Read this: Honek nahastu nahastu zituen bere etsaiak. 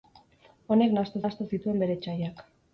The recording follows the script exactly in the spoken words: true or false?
true